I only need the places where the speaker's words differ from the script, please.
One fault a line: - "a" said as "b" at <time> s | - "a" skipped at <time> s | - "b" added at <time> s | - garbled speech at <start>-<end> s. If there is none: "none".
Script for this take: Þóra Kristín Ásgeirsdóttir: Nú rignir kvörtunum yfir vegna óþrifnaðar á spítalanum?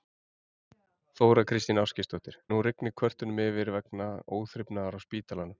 none